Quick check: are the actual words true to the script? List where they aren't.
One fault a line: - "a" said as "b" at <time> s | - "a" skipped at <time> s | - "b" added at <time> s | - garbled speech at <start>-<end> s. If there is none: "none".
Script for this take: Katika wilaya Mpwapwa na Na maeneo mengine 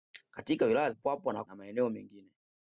none